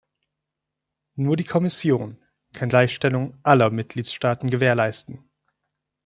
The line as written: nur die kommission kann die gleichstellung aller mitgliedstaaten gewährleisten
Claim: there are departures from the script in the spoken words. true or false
true